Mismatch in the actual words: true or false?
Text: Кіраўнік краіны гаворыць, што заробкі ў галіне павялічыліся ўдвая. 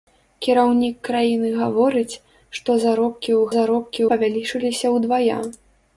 true